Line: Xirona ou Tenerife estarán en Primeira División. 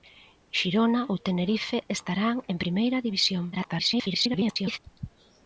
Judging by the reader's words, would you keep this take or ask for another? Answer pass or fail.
fail